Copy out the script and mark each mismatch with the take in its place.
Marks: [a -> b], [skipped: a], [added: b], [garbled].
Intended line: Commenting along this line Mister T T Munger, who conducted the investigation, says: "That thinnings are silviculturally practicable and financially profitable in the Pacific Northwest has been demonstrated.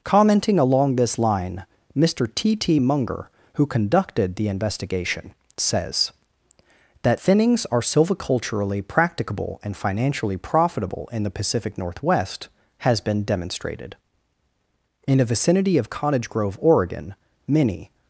Commenting along this line Mister T T Munger, who conducted the investigation, says: "That thinnings are silviculturally practicable and financially profitable in the Pacific Northwest has been demonstrated. [added: In the vicinity of Cottage Grove Oregon many]